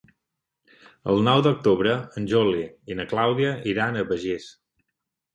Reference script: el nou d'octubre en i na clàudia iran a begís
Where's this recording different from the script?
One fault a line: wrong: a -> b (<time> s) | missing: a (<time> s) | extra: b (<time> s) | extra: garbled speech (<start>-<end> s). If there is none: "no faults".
extra: juli (2.3 s)